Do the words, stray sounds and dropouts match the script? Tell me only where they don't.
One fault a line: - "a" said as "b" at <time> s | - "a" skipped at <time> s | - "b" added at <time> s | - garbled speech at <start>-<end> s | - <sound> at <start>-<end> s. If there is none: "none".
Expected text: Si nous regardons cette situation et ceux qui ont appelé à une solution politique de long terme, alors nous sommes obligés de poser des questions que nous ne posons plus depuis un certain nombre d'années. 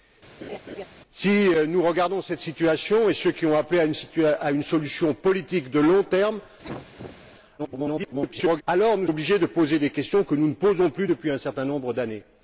- laugh at 0.4-0.9 s
- cough at 6.6-7.2 s
- garbled speech at 7.6-8.6 s
- "sommes" skipped at 9.1 s